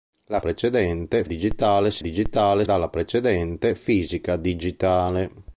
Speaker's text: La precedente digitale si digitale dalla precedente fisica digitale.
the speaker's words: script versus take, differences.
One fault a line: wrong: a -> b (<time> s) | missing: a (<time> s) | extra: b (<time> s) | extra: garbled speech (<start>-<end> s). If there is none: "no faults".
no faults